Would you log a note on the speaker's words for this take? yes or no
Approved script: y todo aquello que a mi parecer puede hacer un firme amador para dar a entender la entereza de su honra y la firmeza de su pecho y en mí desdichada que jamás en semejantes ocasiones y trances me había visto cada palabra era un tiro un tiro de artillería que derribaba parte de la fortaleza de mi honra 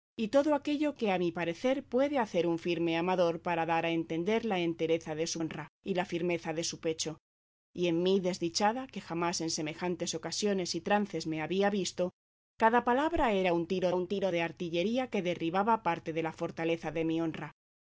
no